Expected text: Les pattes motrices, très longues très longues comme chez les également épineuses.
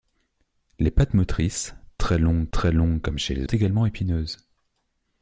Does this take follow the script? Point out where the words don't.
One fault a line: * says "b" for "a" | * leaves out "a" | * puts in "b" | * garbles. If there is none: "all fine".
all fine